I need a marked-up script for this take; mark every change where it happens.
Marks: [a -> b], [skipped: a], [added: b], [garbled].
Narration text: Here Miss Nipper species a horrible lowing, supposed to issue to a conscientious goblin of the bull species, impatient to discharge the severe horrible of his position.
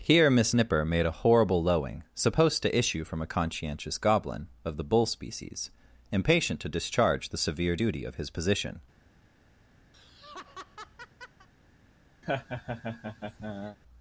Here Miss Nipper [species -> made] a horrible lowing, supposed to issue [to -> from] a conscientious goblin of the bull species, impatient to discharge the severe [horrible -> duty] of his position.